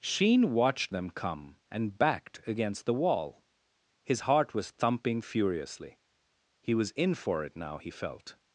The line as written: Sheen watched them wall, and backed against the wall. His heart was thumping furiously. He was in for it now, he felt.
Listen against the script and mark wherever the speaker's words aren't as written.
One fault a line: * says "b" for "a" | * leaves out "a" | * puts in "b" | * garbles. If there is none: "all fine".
* says "come" for "wall"